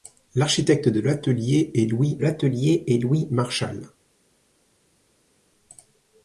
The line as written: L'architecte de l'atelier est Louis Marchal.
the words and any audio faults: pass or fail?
fail